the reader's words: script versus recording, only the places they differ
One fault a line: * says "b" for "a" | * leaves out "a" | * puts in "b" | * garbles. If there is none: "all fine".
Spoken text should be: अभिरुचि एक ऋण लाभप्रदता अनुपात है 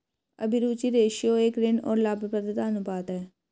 * puts in "रेश्यो"
* puts in "और"